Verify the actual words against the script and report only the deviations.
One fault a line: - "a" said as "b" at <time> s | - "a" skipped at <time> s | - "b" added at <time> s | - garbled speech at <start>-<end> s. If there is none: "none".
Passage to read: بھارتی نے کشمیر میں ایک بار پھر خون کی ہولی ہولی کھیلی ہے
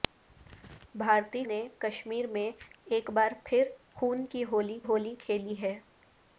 none